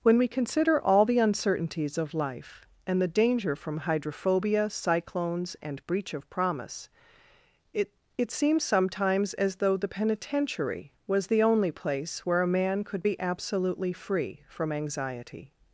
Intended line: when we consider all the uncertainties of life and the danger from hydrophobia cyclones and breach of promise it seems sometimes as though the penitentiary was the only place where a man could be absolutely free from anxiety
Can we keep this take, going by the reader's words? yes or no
no